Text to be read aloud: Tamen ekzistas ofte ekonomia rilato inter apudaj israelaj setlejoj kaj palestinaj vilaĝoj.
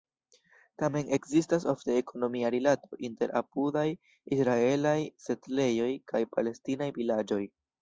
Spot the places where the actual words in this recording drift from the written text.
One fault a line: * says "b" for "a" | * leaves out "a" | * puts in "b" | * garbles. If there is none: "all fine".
all fine